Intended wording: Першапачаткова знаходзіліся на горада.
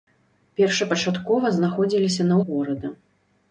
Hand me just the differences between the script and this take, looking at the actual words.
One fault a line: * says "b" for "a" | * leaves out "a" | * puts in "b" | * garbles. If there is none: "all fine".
all fine